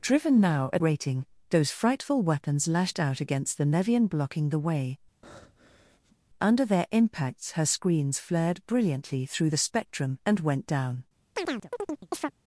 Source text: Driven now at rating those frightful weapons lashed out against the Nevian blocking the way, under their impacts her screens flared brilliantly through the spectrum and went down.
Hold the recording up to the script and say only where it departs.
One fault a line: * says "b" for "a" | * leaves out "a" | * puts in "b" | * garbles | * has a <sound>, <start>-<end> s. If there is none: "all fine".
* has a breath, 5.2-6.2 s
* has a chirp, 11.4-12.3 s